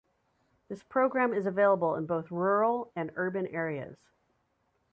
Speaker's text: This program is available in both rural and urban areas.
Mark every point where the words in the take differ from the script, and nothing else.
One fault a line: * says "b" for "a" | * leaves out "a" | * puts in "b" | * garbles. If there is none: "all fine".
all fine